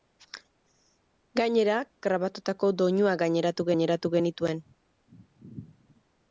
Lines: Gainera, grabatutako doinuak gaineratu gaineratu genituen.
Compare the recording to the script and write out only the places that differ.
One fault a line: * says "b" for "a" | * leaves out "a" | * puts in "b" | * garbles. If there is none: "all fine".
all fine